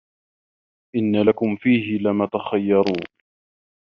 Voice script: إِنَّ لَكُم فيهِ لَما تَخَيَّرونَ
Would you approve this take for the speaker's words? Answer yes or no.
yes